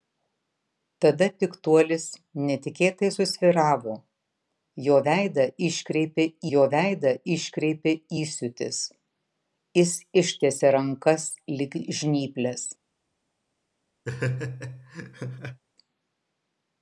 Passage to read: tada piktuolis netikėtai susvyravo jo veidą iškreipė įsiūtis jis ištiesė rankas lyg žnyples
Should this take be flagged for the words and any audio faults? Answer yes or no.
yes